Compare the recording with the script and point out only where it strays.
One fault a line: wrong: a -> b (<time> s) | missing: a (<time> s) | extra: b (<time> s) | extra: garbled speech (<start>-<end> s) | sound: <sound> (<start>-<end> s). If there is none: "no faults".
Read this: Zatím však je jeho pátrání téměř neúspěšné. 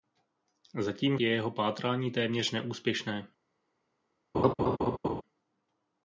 missing: však (1.2 s)
sound: laugh (4.3-5.2 s)